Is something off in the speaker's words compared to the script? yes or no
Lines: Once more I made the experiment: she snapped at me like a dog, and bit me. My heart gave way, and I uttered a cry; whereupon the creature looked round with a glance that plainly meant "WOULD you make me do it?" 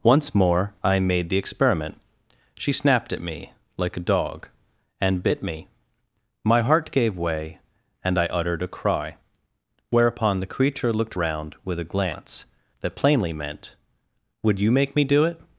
no